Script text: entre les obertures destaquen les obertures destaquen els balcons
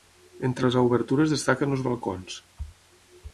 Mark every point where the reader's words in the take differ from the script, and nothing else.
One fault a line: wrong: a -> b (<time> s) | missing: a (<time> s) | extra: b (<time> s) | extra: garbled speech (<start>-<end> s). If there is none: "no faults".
missing: les obertures destaquen (1.8 s)